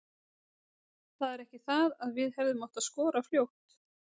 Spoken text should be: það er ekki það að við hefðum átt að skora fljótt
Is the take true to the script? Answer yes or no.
yes